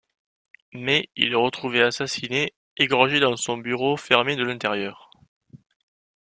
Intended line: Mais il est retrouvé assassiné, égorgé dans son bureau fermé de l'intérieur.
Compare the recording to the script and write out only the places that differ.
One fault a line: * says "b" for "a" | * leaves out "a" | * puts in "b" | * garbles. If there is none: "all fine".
all fine